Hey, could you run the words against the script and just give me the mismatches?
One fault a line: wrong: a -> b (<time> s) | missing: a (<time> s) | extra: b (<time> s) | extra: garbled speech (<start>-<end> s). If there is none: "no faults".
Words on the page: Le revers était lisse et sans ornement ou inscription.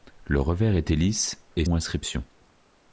missing: sans ornement (1.6 s)